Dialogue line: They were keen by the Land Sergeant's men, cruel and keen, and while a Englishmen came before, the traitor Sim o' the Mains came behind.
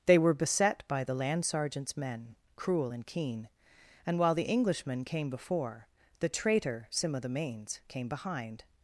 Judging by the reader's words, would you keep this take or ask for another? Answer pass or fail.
fail